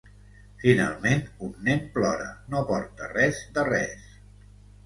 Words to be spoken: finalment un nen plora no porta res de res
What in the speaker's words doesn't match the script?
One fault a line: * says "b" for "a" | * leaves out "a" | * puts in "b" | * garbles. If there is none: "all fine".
all fine